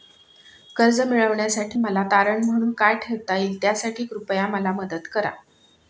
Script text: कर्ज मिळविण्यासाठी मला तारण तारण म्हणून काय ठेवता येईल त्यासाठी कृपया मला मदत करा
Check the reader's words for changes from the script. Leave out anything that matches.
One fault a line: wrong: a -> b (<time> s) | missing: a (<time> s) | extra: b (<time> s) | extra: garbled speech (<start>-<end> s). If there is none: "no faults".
missing: तारण (2.4 s)